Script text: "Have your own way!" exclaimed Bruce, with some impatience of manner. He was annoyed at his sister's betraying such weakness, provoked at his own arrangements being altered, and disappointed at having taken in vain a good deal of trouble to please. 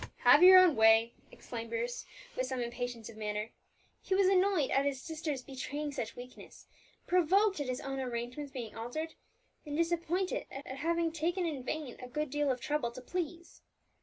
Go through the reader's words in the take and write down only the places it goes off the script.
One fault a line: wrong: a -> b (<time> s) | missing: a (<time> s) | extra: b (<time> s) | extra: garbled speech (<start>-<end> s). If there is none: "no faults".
extra: at (10.6 s)